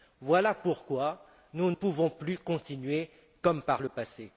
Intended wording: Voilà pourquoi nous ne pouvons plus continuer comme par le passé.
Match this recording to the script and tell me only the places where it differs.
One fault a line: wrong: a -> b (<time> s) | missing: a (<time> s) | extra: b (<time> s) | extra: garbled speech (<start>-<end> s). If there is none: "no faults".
missing: ne (1.7 s)